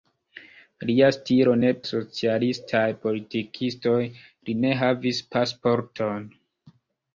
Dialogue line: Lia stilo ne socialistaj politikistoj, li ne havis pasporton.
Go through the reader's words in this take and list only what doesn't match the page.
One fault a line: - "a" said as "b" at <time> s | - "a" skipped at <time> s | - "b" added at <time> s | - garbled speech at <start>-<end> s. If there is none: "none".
none